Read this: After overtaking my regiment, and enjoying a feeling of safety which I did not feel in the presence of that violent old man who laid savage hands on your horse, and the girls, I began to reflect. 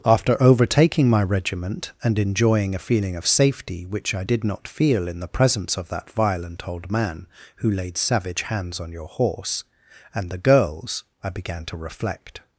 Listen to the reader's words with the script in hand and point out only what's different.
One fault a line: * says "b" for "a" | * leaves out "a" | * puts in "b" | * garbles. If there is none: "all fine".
all fine